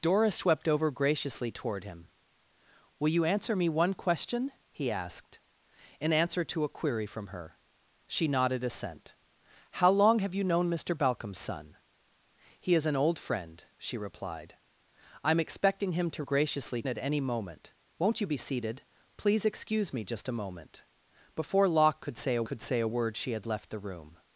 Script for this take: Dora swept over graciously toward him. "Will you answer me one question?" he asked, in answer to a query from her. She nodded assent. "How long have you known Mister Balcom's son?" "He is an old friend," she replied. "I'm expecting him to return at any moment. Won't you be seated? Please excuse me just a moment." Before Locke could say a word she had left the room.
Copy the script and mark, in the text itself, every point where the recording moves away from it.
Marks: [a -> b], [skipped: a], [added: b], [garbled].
Dora swept over graciously toward him. "Will you answer me one question?" he asked, in answer to a query from her. She nodded assent. "How long have you known Mister Balcom's son?" "He is an old friend," she replied. "I'm expecting him to [return -> graciously] at any moment. Won't you be seated? Please excuse me just a moment." Before Locke could say a [added: could say a] word she had left the room.